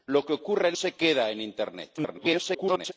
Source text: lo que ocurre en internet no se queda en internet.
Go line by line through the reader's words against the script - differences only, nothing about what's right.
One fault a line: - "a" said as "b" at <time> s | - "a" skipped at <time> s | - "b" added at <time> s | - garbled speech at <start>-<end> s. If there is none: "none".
- "internet no" skipped at 0.8 s
- garbled speech at 2.0-2.9 s